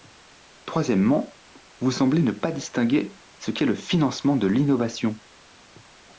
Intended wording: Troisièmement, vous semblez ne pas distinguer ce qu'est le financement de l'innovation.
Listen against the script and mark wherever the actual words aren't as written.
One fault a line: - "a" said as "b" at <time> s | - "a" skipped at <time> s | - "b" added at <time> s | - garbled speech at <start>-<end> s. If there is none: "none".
none